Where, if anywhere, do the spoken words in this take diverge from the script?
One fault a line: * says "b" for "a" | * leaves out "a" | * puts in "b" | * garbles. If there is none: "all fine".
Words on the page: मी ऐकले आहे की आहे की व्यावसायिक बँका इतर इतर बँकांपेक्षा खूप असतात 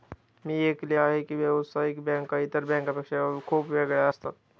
* leaves out "आहे की"
* leaves out "इतर"
* puts in "वेगळ्या"